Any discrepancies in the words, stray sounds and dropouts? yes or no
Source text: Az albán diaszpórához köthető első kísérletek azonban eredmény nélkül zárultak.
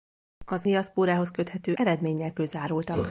yes